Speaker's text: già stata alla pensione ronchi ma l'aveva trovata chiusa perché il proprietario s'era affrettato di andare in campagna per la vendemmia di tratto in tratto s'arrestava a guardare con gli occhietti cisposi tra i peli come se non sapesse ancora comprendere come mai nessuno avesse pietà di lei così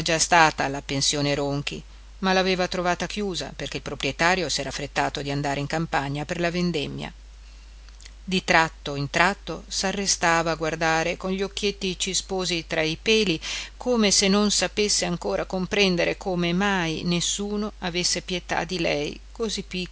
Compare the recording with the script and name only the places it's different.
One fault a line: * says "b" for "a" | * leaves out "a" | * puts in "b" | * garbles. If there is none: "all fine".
all fine